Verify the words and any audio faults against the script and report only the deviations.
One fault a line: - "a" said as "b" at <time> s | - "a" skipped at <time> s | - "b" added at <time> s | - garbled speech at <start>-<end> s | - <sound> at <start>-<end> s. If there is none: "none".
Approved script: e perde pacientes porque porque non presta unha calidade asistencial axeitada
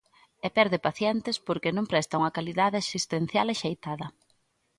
- "porque" skipped at 1.7 s